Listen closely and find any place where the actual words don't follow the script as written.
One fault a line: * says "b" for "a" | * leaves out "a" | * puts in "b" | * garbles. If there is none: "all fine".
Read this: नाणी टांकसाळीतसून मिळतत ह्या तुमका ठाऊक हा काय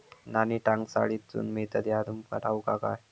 all fine